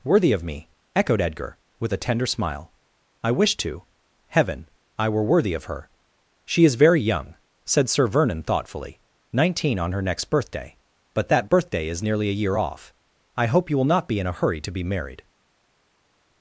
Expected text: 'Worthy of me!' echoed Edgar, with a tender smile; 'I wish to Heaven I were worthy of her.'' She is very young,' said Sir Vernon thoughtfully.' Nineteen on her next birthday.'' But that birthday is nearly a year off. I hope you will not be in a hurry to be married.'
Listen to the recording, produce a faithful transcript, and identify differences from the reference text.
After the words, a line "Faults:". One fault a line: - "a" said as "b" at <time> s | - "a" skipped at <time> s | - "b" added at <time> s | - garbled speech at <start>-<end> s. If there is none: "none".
'Worthy of me!' echoed Edgar, with a tender smile; 'I wish to Heaven I were worthy of her.'' She is very young,' said Sir Vernon thoughtfully.' Nineteen on her next birthday.'' But that birthday is nearly a year off. I hope you will not be in a hurry to be married.'
Faults:
none